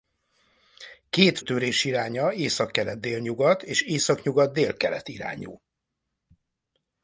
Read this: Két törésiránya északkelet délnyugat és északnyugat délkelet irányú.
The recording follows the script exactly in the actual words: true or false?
true